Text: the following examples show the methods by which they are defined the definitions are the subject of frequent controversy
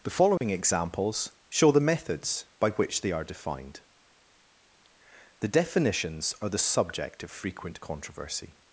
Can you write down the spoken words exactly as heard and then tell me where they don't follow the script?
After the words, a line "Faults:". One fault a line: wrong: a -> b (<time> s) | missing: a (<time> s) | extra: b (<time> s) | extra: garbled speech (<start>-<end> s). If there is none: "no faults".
the following examples show the methods by which they are defined the definitions are the subject of frequent controversy
Faults:
no faults